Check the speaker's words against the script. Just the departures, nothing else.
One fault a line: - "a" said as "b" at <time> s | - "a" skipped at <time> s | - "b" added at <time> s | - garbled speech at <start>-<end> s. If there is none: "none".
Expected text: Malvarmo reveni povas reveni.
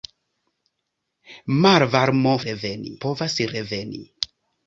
none